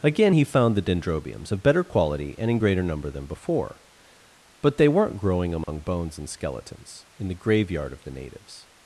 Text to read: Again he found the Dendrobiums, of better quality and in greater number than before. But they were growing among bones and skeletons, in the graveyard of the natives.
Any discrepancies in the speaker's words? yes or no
yes